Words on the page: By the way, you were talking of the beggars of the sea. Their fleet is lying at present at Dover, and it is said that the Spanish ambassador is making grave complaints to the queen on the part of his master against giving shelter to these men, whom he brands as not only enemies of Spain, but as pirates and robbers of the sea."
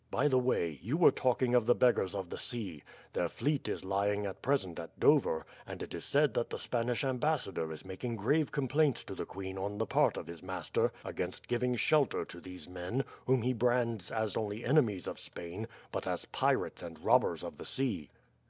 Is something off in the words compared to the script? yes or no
yes